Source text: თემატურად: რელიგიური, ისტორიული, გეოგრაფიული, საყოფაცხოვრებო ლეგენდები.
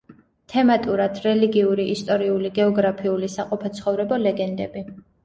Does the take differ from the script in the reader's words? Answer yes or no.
no